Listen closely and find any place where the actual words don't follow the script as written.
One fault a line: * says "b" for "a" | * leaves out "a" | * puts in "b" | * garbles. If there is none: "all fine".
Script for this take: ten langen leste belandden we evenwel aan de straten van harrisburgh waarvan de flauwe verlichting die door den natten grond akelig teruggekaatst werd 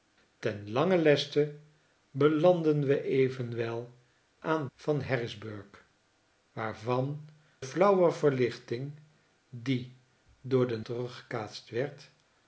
* leaves out "de straten"
* leaves out "de"
* leaves out "natten grond akelig"